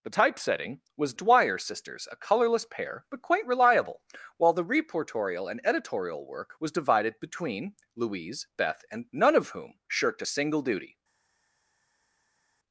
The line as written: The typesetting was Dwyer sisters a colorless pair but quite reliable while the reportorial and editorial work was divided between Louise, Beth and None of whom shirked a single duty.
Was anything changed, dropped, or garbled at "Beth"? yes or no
no